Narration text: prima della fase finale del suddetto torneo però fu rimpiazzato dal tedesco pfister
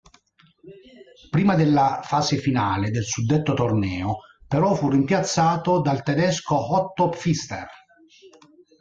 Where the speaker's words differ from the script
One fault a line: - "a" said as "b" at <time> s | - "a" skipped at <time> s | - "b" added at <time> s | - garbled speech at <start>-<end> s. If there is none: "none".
- "otto" added at 6.8 s